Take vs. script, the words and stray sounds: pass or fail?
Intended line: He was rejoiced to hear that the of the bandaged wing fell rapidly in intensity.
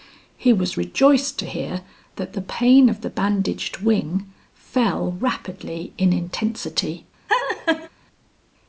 fail